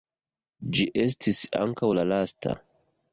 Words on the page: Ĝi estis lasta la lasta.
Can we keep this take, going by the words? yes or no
no